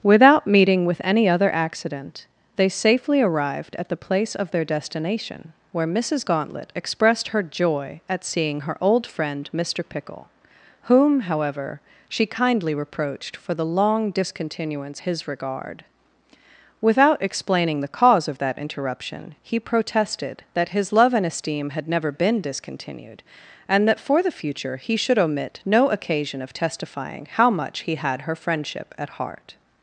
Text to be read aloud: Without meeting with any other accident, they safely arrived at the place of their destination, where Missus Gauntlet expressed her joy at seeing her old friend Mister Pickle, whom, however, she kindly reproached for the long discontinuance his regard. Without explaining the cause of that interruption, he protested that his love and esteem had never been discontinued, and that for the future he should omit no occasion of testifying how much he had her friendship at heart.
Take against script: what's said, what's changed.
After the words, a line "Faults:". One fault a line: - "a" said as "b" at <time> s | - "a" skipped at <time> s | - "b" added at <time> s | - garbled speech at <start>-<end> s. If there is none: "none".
Without meeting with any other accident, they safely arrived at the place of their destination, where Missus Gauntlet expressed her joy at seeing her old friend Mister Pickle, whom, however, she kindly reproached for the long discontinuance his regard. Without explaining the cause of that interruption, he protested that his love and esteem had never been discontinued, and that for the future he should omit no occasion of testifying how much he had her friendship at heart.
Faults:
none